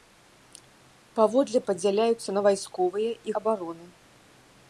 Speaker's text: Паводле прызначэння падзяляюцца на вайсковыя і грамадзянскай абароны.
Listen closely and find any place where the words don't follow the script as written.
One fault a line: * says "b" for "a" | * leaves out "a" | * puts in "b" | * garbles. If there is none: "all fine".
* leaves out "прызначэння"
* leaves out "грамадзянскай"